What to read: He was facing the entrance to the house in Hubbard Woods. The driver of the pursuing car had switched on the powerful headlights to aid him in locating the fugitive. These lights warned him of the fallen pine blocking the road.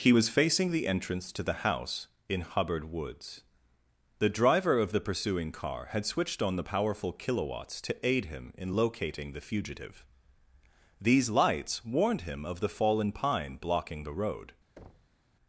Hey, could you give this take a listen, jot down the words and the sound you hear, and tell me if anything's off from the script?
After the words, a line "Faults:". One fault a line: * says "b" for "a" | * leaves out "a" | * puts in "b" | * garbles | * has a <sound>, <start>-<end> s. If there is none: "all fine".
He was facing the entrance to the house in Hubbard Woods. The driver of the pursuing car had switched on the powerful kilowatts to aid him in locating the fugitive. These lights warned him of the fallen pine blocking the road.
Faults:
* says "kilowatts" for "headlights"
* has a thud, 14.8-15.2 s